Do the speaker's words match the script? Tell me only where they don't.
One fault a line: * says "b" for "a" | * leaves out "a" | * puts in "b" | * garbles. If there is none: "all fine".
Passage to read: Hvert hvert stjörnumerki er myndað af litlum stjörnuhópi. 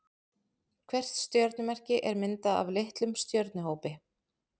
* leaves out "hvert"